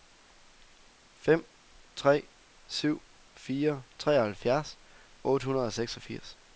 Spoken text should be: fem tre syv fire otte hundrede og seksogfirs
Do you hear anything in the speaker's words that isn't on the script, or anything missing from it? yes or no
yes